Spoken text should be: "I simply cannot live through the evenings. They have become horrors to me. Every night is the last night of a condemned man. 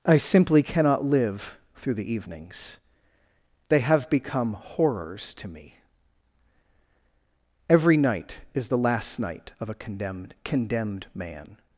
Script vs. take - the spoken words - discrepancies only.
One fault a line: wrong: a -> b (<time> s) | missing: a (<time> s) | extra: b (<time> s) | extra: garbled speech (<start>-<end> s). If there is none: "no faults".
extra: condemned (10.4 s)